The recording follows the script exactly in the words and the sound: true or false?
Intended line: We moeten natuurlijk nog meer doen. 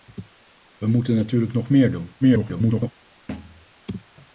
false